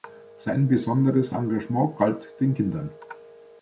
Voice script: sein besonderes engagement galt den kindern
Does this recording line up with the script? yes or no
yes